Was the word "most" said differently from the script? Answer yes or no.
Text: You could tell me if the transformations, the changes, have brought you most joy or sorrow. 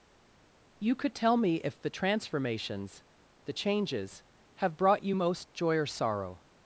no